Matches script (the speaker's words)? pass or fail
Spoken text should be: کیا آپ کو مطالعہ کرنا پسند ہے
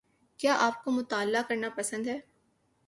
pass